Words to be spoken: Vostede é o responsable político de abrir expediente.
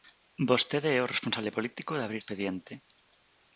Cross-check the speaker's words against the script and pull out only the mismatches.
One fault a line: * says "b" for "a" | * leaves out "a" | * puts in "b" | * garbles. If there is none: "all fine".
all fine